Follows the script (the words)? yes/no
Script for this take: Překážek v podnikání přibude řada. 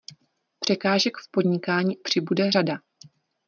yes